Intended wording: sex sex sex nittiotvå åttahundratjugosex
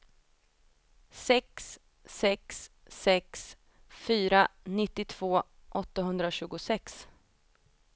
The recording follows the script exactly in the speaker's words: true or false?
false